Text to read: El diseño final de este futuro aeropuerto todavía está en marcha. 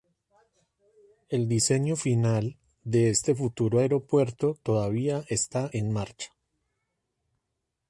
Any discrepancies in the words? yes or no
no